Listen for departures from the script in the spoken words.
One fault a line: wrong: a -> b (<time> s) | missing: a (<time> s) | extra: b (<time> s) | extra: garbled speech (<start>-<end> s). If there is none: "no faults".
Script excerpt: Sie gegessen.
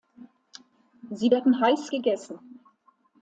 extra: werden heiß (1.3 s)